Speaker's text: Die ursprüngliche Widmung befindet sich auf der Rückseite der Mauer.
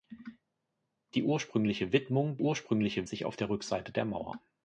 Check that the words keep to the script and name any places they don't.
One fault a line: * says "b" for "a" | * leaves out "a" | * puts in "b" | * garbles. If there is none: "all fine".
* says "ursprüngliche" for "befindet"